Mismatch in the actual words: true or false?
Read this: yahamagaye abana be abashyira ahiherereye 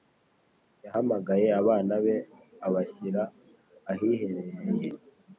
false